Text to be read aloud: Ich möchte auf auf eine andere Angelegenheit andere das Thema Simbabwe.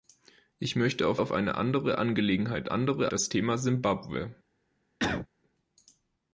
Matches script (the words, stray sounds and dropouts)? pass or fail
fail